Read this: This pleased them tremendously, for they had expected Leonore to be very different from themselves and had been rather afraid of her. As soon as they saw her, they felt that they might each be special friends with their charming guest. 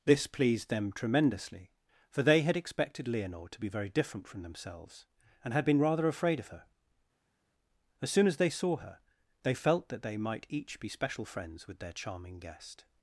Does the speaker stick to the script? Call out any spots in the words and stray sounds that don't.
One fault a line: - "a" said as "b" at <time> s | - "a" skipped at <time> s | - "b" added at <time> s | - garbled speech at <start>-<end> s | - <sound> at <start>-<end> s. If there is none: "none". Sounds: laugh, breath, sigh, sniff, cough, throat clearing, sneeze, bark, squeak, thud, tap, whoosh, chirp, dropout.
none